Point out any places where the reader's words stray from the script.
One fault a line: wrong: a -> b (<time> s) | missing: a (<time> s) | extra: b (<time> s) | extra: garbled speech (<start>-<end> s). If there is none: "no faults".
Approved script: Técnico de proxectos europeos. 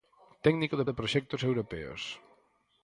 extra: de (0.9 s)